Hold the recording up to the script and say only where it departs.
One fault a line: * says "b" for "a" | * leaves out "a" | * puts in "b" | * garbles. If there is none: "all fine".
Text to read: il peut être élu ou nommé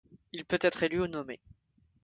all fine